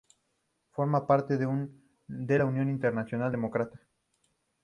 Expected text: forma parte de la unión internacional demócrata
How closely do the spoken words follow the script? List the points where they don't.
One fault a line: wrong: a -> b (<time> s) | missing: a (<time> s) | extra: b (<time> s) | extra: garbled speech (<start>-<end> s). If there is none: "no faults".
no faults